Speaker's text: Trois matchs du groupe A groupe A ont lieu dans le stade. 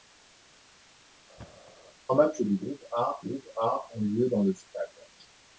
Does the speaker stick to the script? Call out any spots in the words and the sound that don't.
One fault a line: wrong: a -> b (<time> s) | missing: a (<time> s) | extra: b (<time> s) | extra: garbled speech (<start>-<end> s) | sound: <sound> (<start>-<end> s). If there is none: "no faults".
sound: thud (1.4-1.7 s)